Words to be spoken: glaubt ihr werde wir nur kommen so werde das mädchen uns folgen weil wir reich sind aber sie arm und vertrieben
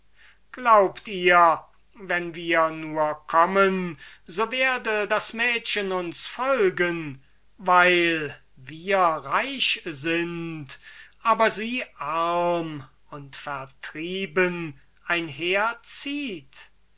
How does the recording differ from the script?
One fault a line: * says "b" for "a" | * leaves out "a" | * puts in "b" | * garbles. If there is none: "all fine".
* says "wenn" for "werde"